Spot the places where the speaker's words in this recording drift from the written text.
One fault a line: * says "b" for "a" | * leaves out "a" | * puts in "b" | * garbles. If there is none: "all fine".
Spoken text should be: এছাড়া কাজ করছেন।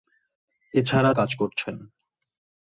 all fine